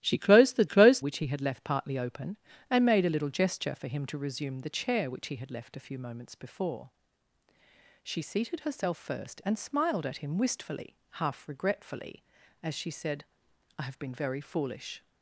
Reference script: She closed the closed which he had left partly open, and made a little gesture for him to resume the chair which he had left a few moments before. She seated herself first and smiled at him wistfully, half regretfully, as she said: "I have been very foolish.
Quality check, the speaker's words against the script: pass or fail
pass